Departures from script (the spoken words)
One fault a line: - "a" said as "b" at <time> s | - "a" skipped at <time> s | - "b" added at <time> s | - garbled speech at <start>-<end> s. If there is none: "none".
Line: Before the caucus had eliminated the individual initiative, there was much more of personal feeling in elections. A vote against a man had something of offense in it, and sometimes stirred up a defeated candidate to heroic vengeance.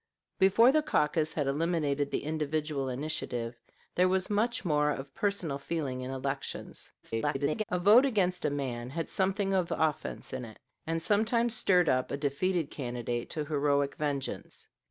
- garbled speech at 7.0-7.6 s